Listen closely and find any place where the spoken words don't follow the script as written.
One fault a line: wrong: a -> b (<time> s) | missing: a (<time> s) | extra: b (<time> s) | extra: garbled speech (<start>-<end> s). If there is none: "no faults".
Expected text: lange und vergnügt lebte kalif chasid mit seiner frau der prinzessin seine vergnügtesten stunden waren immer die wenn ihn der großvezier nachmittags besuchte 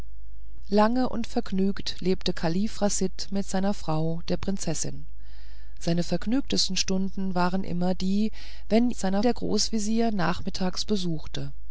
wrong: ihn -> seiner (8.9 s)